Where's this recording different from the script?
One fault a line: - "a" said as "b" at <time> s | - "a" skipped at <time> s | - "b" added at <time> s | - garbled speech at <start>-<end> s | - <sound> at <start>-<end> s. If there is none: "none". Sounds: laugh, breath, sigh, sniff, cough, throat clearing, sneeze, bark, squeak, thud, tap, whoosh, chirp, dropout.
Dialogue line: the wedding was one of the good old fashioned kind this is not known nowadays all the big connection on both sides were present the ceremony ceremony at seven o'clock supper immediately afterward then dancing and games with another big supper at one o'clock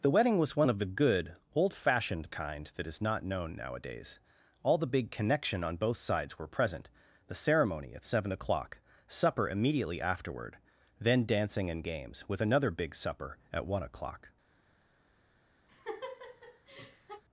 - "this" said as "that" at 2.8 s
- "ceremony" skipped at 7.9 s
- laugh at 15.7-17.2 s